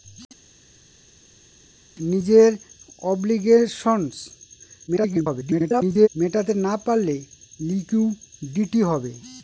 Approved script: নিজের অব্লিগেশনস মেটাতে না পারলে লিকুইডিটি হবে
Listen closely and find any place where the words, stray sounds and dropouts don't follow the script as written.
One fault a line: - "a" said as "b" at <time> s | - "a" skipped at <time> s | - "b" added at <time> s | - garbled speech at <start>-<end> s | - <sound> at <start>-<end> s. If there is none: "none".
- garbled speech at 4.9-6.1 s